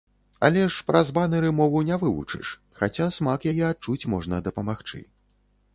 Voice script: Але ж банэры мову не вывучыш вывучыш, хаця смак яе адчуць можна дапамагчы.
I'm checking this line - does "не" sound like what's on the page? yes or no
yes